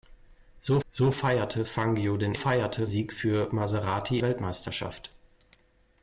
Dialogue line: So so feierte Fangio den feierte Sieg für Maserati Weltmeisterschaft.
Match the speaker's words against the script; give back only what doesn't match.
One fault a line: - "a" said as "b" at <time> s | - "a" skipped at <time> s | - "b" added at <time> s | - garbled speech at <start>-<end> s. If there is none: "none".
none